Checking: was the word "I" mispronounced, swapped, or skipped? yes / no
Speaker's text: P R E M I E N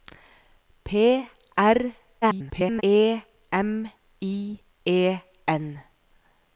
no